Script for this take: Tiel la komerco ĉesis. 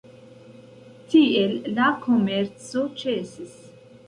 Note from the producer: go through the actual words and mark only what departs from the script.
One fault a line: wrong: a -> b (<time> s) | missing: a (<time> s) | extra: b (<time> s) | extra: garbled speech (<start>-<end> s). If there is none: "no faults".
no faults